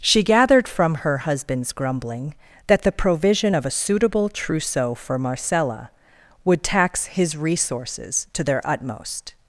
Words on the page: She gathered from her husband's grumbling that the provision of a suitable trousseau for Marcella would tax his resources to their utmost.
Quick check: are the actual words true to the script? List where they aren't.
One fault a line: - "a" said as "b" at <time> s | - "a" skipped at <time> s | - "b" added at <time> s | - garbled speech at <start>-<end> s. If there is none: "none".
none